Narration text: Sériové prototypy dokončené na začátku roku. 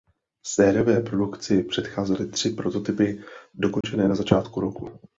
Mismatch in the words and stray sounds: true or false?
true